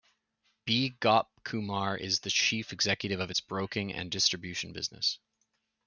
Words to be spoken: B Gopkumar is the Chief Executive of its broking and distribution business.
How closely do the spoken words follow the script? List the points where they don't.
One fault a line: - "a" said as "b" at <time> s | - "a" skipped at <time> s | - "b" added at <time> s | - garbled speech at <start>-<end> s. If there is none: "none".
none